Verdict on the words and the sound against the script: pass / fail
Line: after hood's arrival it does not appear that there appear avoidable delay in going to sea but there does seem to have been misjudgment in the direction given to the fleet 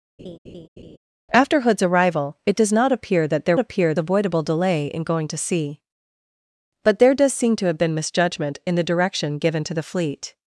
fail